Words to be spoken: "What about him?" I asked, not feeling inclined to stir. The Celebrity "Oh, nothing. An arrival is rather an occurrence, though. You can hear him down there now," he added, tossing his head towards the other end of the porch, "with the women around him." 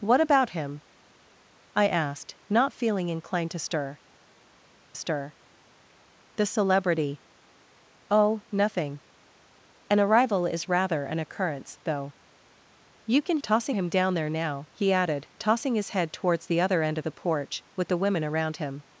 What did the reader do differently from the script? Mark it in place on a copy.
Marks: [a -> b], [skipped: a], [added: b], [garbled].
"What about him?" I asked, not feeling inclined to stir. [added: stir] The Celebrity "Oh, nothing. An arrival is rather an occurrence, though. You can [hear -> tossing] him down there now," he added, tossing his head towards the other end of the porch, "with the women around him."